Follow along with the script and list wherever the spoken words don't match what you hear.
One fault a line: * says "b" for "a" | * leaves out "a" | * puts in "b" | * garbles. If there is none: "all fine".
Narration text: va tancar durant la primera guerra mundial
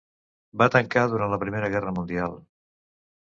all fine